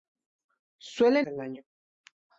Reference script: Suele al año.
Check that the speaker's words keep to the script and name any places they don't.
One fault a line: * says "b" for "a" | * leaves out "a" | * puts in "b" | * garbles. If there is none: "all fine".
all fine